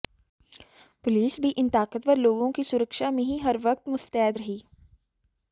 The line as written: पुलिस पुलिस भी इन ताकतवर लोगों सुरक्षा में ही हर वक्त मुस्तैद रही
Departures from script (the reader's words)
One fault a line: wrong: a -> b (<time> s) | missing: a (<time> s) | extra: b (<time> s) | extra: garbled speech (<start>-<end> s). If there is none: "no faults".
missing: पुलिस (1.4 s)
extra: की (2.5 s)